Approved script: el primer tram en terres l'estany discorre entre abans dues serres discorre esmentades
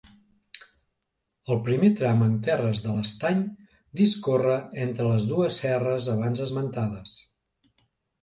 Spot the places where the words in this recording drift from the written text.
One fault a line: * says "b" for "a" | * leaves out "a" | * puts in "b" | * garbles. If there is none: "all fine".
* puts in "de"
* says "les" for "abans"
* says "abans" for "discorre"